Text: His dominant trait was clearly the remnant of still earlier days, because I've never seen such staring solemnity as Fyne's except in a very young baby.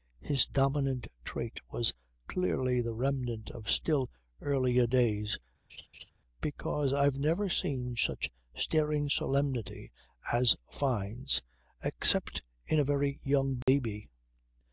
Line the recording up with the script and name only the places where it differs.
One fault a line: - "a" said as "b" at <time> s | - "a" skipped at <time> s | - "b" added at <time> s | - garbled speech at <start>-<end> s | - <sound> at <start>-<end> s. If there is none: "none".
- laugh at 5.7-6.1 s
- dropout at 13.6-13.7 s